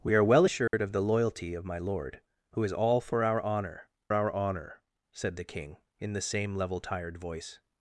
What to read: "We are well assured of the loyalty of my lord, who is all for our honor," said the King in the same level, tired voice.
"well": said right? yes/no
yes